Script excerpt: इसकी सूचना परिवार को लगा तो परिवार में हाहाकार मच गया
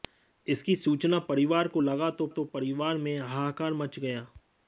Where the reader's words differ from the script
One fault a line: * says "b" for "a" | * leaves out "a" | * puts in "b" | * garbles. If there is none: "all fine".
* puts in "तो"